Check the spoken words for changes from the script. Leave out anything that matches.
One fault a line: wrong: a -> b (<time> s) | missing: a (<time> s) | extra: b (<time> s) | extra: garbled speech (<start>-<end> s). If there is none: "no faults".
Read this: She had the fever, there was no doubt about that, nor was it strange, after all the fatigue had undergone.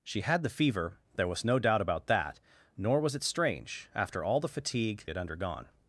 no faults